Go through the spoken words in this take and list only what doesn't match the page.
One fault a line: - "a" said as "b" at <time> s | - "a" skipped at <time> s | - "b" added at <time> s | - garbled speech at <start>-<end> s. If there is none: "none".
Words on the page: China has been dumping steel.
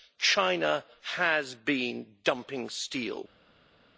none